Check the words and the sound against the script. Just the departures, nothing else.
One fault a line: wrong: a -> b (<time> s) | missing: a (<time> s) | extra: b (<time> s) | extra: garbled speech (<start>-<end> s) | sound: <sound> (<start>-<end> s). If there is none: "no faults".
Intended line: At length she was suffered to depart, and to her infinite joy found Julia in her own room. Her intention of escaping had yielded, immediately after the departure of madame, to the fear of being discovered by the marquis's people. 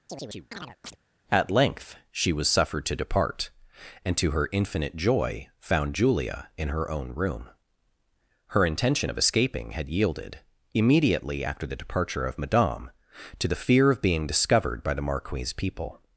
sound: chirp (0.1-1.0 s)